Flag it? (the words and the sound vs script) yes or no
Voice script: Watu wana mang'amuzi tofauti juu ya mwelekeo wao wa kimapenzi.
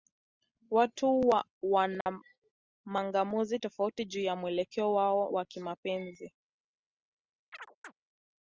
yes